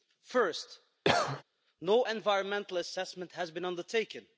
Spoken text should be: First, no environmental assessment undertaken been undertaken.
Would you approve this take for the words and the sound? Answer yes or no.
no